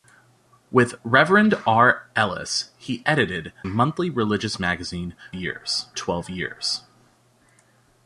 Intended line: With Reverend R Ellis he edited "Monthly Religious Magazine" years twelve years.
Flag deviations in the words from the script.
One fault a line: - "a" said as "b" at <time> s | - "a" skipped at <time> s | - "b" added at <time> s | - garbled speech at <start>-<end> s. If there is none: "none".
none